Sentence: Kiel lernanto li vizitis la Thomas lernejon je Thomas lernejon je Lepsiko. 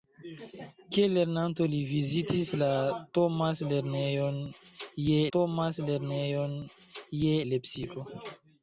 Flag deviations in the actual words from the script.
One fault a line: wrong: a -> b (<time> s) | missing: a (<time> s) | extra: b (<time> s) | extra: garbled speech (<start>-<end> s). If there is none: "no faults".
no faults